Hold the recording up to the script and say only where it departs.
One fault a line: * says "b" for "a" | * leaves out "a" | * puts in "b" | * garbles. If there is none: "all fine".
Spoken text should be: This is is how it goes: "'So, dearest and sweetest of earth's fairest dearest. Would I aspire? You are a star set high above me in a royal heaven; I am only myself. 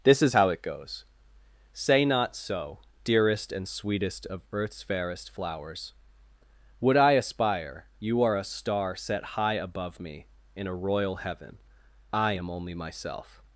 * leaves out "is"
* puts in "Say not"
* says "flowers" for "dearest"